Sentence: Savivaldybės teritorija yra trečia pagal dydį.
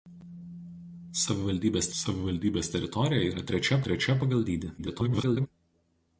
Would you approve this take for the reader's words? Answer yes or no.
no